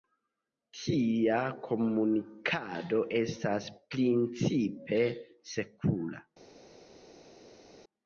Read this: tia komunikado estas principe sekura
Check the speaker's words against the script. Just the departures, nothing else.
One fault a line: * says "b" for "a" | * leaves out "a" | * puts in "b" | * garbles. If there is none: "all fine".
all fine